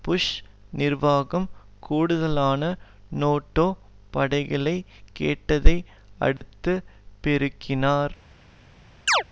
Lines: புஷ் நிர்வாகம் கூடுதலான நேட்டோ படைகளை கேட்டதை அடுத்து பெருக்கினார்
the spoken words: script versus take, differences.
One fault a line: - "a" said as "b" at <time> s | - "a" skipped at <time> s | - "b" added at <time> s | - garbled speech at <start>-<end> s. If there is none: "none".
none